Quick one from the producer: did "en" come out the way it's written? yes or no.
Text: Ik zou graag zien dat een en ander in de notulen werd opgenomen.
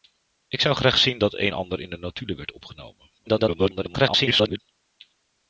no